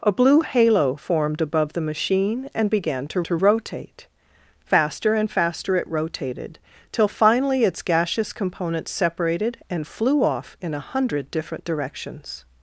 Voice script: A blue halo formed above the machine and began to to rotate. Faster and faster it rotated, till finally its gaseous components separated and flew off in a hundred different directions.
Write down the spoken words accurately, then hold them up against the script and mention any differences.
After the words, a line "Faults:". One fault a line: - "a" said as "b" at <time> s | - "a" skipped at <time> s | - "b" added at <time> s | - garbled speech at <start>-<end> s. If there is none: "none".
A blue halo formed above the machine and began to to rotate. Faster and faster it rotated, till finally its gaseous components separated and flew off in a hundred different directions.
Faults:
none